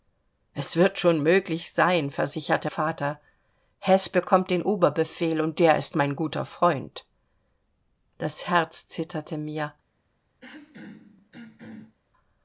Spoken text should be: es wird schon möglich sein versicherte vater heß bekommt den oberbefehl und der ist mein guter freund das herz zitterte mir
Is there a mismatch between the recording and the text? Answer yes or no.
no